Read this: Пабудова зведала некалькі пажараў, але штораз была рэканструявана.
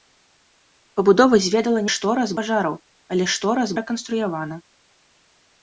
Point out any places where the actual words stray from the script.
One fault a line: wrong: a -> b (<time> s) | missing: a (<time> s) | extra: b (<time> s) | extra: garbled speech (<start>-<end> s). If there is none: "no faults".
wrong: некалькі -> штораз (1.9 s)
missing: была (3.7 s)